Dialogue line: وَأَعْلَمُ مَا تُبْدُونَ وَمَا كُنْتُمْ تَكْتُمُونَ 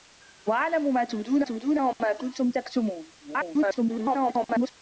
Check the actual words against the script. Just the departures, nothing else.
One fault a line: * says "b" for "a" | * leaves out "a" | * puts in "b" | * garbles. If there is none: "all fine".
* puts in "تُبْدُونَ"
* garbles